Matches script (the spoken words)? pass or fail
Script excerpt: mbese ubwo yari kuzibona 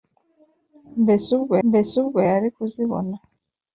fail